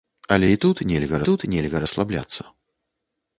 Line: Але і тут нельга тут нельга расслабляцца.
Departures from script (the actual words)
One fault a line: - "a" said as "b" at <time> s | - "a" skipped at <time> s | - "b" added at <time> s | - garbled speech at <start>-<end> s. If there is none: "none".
none